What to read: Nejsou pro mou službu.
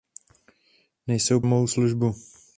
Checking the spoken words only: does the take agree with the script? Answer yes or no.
no